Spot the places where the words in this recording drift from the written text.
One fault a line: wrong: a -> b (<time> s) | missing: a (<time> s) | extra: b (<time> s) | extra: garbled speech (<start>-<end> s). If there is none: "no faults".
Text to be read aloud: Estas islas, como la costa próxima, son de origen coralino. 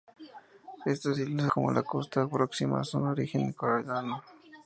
no faults